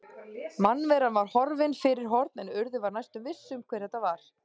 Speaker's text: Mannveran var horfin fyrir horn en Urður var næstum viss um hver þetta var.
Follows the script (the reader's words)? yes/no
yes